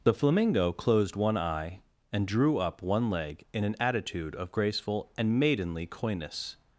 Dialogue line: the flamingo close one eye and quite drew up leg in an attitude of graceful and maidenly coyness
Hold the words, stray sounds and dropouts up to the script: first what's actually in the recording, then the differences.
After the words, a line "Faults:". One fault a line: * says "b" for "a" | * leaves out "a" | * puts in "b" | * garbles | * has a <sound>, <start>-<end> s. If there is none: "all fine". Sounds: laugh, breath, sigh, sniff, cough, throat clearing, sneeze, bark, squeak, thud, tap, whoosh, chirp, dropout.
the flamingo closed one eye and drew up one leg in an attitude of graceful and maidenly coyness
Faults:
* says "closed" for "close"
* leaves out "quite"
* puts in "one"